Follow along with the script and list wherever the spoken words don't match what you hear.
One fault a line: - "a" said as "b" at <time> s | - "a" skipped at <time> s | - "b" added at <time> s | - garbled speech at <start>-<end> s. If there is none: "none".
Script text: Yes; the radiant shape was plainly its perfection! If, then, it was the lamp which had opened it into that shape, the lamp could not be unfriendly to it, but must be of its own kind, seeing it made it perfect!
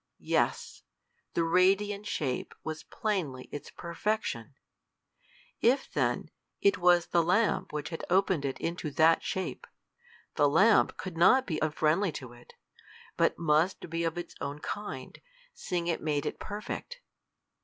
none